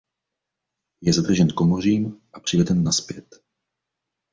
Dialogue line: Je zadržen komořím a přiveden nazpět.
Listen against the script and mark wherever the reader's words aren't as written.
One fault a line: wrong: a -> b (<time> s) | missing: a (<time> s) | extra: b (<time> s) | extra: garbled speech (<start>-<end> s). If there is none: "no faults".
no faults